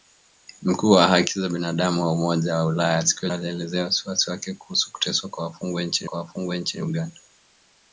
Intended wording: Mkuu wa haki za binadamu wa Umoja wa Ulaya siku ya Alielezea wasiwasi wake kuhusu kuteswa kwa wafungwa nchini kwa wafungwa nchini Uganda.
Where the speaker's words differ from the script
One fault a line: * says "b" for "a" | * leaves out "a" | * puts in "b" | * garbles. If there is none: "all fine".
all fine